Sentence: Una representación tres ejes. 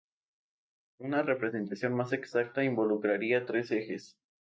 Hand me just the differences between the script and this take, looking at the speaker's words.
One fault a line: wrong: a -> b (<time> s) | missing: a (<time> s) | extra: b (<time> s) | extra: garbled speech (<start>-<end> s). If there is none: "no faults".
extra: más exacta involucraría (1.9 s)